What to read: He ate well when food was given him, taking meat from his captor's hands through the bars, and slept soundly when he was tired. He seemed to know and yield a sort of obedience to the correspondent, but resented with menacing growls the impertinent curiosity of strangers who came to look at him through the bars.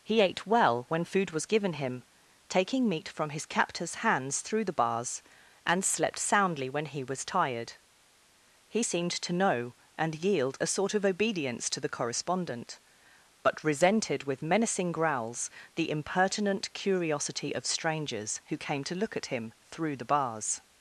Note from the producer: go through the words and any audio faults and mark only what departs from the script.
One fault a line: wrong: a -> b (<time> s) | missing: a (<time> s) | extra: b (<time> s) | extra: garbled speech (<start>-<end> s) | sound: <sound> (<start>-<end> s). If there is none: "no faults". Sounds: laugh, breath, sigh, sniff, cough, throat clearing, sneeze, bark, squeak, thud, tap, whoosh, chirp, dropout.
no faults